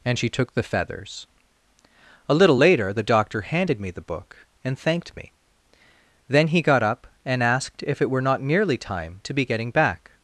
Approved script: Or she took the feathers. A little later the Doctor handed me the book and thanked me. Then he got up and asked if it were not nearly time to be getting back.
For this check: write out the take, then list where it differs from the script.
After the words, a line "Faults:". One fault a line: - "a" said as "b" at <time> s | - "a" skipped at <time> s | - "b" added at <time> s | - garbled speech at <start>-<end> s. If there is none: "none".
And she took the feathers. A little later the Doctor handed me the book and thanked me. Then he got up and asked if it were not nearly time to be getting back.
Faults:
- "Or" said as "And" at 0.0 s